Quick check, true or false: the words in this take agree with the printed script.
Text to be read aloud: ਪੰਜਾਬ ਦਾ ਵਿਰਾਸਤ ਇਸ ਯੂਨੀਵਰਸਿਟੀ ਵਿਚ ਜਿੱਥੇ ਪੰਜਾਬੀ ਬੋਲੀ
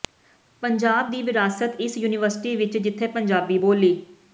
false